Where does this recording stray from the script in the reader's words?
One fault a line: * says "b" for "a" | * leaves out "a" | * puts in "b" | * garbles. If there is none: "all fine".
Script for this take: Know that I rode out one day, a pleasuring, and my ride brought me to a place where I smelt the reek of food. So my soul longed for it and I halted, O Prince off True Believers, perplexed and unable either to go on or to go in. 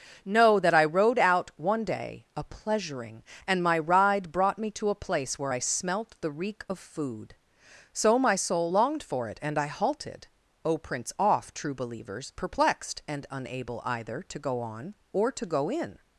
all fine